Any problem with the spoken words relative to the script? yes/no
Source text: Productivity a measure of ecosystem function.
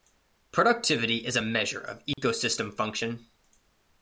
yes